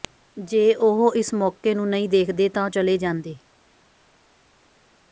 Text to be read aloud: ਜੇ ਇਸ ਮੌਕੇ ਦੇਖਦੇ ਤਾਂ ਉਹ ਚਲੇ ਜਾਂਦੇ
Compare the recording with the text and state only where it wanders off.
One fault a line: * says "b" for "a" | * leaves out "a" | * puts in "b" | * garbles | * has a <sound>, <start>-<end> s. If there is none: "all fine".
* puts in "ਉਹ"
* puts in "ਨੂੰ ਨਹੀਂ"